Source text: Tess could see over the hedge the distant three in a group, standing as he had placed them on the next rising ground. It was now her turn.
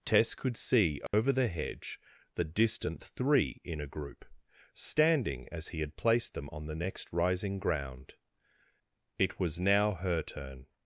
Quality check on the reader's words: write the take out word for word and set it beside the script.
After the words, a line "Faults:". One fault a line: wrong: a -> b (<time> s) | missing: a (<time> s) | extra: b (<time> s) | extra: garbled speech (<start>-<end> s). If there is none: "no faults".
Tess could see over the hedge the distant three in a group, standing as he had placed them on the next rising ground. It was now her turn.
Faults:
no faults